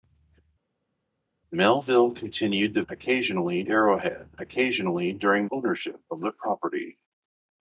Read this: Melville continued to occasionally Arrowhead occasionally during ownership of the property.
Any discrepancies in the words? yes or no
no